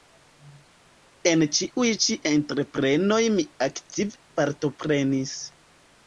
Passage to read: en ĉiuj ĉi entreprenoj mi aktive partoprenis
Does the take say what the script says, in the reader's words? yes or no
yes